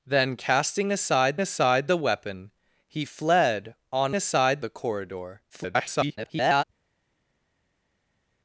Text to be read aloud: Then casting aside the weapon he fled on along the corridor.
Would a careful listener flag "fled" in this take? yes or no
no